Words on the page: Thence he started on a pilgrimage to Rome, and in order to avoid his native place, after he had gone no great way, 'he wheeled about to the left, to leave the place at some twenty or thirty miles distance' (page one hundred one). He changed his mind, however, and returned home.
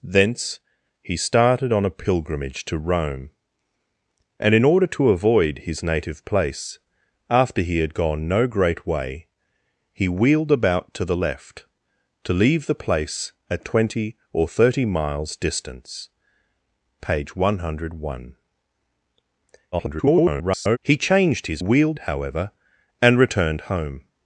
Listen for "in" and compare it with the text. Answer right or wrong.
right